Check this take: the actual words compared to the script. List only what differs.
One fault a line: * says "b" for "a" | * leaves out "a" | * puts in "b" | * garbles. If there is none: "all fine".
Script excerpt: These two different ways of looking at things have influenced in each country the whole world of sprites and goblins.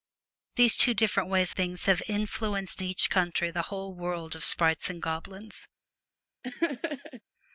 * leaves out "of looking at"
* leaves out "in"